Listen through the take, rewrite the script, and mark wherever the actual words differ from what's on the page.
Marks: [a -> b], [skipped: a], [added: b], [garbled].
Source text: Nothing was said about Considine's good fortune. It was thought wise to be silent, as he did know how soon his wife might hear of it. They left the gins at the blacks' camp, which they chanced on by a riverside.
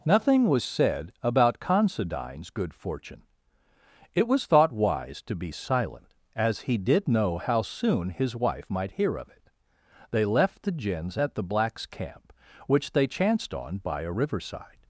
Nothing was said about Considine's good fortune. It was thought wise to be silent, as he did know how soon his wife might hear of it. They left the gins at the blacks' camp, which they chanced on by a riverside.